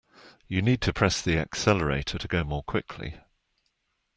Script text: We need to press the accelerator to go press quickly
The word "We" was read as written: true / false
false